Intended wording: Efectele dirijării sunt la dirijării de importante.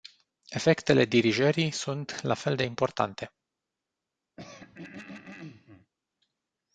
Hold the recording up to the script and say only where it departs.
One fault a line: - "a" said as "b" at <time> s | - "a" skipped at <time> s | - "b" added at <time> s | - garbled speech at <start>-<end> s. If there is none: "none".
- "dirijării" said as "fel" at 2.3 s